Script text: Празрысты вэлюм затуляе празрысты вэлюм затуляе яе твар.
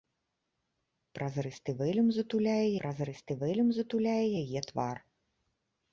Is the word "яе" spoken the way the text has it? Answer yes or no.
yes